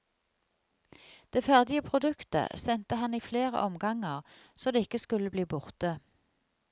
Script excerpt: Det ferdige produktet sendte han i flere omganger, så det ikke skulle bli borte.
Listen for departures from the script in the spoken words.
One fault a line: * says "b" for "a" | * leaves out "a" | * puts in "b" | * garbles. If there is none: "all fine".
all fine